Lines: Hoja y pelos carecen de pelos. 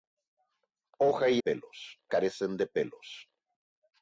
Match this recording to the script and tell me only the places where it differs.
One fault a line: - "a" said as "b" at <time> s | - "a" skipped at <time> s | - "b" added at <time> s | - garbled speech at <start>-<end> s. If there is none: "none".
none